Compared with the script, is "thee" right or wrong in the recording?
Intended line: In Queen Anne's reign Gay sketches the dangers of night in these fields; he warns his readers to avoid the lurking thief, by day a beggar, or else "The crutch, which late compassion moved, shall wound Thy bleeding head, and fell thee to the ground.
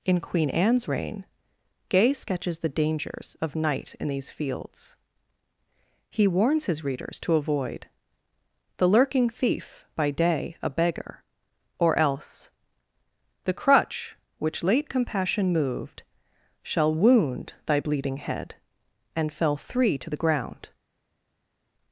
wrong